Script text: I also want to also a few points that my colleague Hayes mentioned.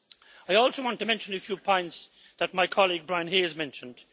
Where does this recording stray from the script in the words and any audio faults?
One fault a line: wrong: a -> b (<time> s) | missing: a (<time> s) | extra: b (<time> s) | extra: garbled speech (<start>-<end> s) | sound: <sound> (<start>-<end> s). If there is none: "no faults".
wrong: also -> mention (1.0 s)
extra: Brian (3.1 s)